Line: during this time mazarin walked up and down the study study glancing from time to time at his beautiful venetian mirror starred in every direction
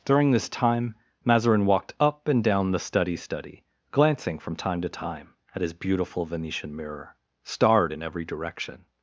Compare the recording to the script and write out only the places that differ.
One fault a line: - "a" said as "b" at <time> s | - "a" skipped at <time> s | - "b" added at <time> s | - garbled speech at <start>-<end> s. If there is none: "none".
none